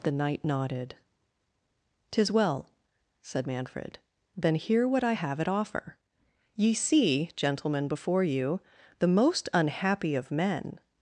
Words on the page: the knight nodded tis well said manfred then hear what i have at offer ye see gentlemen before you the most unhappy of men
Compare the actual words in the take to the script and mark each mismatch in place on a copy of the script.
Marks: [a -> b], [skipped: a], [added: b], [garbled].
the knight nodded tis well said manfred then hear what i have at offer ye see gentlemen before you the most unhappy of men